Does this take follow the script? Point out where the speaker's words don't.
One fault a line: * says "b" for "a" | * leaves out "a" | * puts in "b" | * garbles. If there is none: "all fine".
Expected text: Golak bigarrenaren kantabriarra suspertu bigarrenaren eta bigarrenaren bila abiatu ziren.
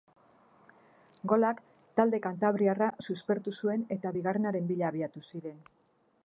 * says "talde" for "bigarrenaren"
* says "zuen" for "bigarrenaren"